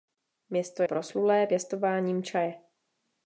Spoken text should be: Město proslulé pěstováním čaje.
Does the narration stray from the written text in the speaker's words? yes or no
no